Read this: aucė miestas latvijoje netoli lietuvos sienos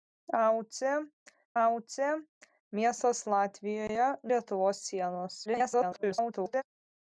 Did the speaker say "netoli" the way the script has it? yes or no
no